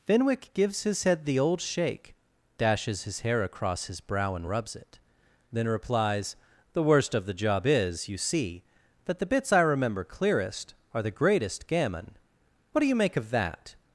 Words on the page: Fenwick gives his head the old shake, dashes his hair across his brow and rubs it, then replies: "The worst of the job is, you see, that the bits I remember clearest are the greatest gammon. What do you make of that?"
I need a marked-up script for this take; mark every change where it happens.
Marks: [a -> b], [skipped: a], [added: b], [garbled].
Fenwick gives his head the old shake, dashes his hair across his brow and rubs it, then replies: "The worst of the job is, you see, that the bits I remember clearest are the greatest gammon. What do you make of that?"